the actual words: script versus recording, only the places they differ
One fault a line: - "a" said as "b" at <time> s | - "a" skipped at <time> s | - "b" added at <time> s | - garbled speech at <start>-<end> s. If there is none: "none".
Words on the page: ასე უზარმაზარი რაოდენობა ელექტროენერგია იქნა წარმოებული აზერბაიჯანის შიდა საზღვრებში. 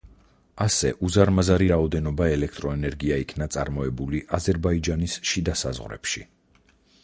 none